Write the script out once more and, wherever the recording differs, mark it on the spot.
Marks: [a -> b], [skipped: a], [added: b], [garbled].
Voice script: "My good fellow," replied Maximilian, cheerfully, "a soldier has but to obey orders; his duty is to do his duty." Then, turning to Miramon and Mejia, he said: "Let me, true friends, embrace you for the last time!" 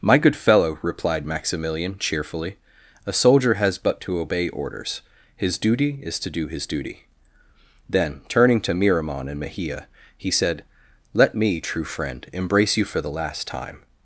"My good fellow," replied Maximilian, cheerfully, "a soldier has but to obey orders; his duty is to do his duty." Then, turning to Miramon and Mejia, he said: "Let me, true [friends, -> friend] embrace you for the last time!"